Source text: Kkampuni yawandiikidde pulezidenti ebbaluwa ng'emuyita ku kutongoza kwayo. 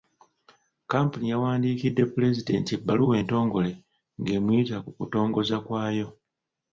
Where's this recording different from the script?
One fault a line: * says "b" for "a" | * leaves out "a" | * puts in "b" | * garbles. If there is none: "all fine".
* puts in "entongole"